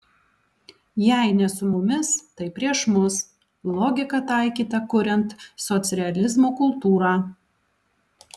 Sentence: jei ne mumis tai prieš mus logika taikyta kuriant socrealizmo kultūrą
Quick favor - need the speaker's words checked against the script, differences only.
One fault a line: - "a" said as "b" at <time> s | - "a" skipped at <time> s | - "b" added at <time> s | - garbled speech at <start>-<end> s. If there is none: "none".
- "su" added at 1.6 s